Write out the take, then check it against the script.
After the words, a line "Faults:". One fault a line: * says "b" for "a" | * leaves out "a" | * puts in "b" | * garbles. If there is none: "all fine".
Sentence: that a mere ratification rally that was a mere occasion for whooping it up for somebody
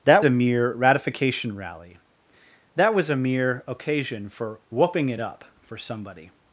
that a mere ratification rally that was a mere occasion for whooping it up for somebody
Faults:
all fine